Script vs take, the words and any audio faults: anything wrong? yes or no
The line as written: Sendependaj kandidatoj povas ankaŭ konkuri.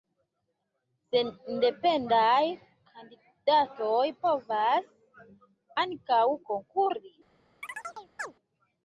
yes